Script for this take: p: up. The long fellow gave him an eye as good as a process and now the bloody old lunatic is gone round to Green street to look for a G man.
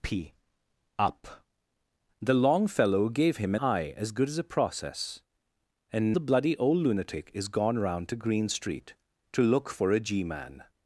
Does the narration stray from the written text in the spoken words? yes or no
yes